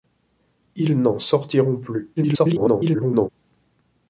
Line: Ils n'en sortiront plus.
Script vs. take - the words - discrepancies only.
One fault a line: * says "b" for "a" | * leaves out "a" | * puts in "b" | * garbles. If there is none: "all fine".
* garbles